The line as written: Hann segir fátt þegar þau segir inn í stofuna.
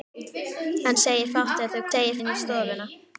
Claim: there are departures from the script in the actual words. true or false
false